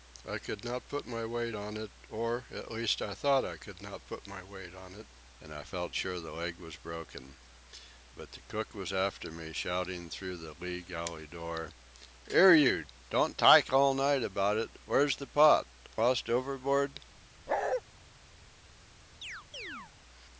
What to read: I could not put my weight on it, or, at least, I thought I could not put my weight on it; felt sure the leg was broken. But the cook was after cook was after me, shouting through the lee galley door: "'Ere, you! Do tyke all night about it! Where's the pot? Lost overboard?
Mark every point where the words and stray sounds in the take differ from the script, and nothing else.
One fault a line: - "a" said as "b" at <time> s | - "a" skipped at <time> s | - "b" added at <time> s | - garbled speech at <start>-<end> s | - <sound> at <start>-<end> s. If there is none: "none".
- "and I" added at 5.4 s
- "cook was after" skipped at 9.3 s
- "Do" said as "Don't" at 13.1 s
- bark at 17.5-17.8 s
- chirp at 19.2-19.9 s